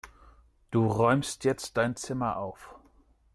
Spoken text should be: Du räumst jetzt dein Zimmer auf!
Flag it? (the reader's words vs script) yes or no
no